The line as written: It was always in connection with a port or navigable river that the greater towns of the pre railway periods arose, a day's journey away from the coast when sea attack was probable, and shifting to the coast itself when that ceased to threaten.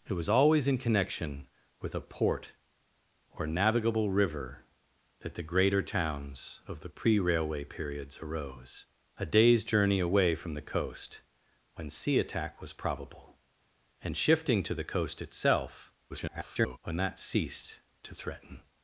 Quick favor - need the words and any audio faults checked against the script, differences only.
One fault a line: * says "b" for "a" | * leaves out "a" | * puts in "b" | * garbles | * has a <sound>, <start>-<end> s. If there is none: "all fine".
* garbles